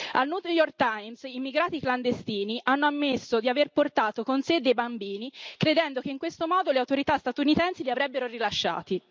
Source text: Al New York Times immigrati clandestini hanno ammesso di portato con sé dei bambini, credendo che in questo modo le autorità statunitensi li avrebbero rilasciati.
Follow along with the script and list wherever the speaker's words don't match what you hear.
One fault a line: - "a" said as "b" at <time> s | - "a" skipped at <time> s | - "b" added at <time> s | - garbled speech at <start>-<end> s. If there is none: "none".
- "aver" added at 3.5 s